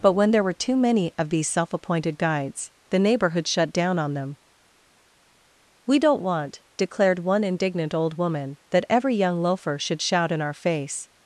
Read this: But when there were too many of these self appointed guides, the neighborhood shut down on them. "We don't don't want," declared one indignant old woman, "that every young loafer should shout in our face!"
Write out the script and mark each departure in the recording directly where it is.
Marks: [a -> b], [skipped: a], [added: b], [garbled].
But when there were too many of these self appointed guides, the neighborhood shut down on them. "We don't [skipped: don't] want," declared one indignant old woman, "that every young loafer should shout in our face!"